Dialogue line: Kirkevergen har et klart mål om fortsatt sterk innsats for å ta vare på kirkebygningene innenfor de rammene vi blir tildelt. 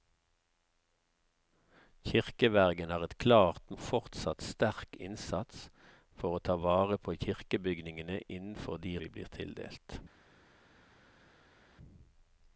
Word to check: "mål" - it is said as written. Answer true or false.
false